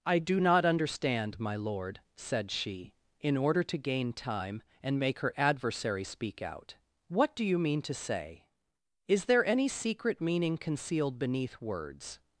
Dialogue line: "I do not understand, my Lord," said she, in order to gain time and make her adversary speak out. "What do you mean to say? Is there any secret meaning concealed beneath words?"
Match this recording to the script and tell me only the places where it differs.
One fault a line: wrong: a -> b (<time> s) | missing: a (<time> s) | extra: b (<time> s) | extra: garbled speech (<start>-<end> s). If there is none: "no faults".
no faults